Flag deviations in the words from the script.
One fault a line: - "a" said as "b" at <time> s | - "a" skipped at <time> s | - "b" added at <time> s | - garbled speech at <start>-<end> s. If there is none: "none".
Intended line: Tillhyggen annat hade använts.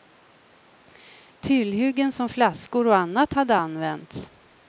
- "som flaskor och" added at 2.1 s